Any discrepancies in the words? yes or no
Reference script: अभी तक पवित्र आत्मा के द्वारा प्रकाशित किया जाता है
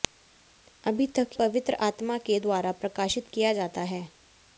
no